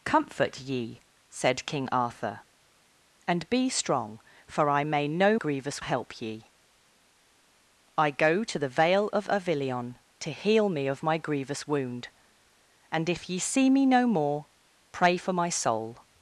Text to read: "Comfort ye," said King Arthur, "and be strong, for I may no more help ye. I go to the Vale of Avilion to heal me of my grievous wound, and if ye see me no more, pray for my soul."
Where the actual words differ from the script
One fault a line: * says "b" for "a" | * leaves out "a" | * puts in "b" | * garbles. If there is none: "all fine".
* says "grievous" for "more"